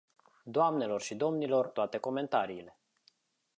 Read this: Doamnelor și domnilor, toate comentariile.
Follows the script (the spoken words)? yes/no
yes